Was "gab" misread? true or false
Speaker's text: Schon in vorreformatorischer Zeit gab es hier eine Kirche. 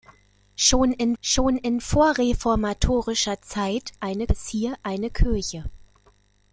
true